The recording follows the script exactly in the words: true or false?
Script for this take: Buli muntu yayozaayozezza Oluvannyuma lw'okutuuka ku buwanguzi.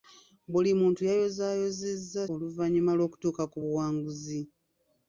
true